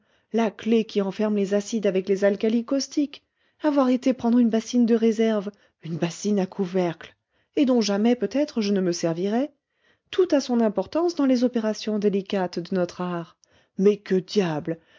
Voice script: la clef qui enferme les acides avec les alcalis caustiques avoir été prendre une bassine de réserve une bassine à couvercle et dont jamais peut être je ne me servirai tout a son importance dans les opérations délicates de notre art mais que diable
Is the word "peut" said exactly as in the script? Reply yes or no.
yes